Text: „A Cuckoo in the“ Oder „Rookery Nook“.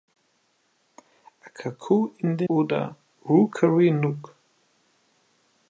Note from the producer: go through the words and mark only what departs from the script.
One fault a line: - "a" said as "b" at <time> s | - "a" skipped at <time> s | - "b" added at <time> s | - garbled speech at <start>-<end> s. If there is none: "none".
none